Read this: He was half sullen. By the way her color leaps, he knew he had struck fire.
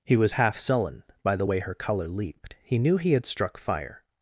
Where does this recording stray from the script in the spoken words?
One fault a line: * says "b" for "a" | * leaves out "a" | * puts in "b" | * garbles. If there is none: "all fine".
* says "leaped" for "leaps"